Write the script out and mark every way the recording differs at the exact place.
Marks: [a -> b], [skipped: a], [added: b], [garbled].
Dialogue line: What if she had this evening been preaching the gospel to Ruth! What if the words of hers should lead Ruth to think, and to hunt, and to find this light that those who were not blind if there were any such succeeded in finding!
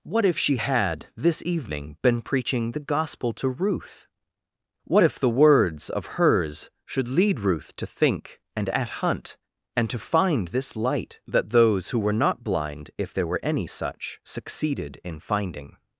What if she had this evening been preaching the gospel to Ruth! What if the words of hers should lead Ruth to think, and [to -> at] hunt, and to find this light that those who were not blind if there were any such succeeded in finding!